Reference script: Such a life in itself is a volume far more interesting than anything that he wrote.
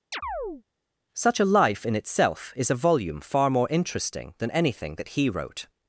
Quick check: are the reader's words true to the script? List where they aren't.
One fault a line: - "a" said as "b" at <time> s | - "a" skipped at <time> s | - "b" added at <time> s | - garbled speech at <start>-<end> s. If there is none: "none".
none